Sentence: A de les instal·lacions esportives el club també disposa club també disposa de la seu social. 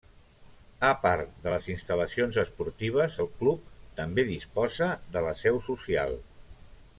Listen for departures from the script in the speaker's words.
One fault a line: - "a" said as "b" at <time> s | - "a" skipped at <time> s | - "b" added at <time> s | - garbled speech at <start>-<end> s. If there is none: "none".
- "part" added at 1.0 s
- "club també disposa" skipped at 4.9 s